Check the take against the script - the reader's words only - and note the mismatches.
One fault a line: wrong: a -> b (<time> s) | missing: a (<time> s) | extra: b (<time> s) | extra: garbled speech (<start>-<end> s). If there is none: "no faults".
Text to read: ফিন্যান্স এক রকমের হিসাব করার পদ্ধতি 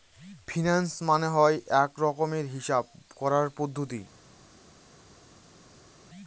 extra: মানে হয় (1.1 s)